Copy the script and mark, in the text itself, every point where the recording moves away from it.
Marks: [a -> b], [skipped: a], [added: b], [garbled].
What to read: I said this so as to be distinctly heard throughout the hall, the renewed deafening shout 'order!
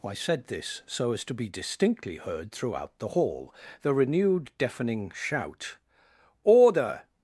I said this so as to be distinctly heard throughout the hall, the renewed deafening shout 'order!